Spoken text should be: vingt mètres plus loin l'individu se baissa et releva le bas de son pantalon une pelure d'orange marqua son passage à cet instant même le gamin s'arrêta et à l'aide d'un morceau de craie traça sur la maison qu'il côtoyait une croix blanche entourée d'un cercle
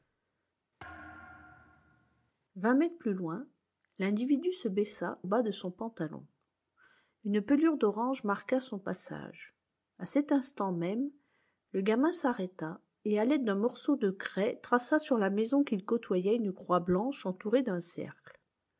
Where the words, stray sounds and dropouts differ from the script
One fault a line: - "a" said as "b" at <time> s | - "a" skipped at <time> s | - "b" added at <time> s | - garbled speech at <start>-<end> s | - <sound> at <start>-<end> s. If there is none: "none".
- thud at 0.8-2.3 s
- "et releva le" skipped at 5.2 s